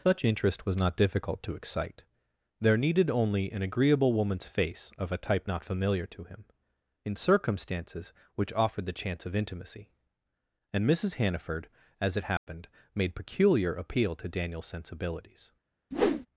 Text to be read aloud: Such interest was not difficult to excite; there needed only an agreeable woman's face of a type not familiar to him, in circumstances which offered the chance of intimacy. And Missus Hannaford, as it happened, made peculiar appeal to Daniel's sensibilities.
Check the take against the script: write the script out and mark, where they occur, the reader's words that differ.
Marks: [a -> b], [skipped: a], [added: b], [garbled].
Such interest was not difficult to excite; there needed only an agreeable woman's face of a type not familiar to him, in circumstances which offered the chance of intimacy. And Missus Hannaford, as it happened, made peculiar appeal to Daniel's sensibilities.